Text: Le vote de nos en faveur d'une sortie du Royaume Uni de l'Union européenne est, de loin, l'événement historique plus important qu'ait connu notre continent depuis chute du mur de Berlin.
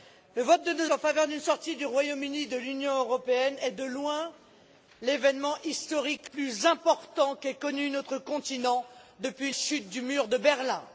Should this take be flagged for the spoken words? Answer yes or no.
no